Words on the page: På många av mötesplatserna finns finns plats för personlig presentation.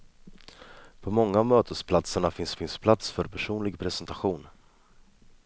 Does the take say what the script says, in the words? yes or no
yes